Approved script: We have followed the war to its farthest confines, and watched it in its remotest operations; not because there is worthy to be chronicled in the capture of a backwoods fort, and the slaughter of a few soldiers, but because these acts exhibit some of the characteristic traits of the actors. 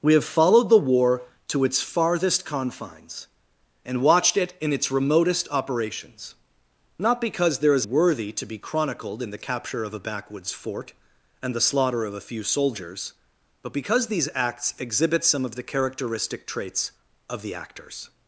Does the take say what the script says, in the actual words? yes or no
yes